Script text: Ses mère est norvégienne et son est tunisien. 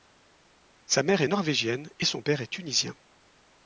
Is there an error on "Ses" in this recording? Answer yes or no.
yes